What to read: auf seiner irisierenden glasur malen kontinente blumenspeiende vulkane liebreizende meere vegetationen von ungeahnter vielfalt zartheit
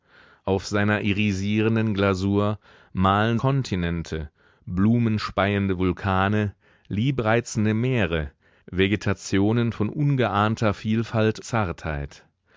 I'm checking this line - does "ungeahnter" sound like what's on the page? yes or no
yes